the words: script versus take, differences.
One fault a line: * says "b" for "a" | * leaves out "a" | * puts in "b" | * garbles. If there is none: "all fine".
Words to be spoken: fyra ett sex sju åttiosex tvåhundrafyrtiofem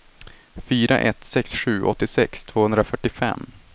all fine